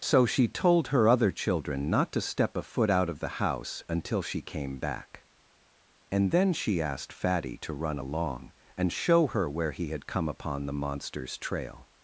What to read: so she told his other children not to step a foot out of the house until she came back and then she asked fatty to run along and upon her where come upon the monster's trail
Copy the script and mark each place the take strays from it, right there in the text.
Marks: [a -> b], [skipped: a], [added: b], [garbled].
so she told [his -> her] other children not to step a foot out of the house until she came back and then she asked fatty to run along and [upon -> show] her where [added: he had] come upon the monster's trail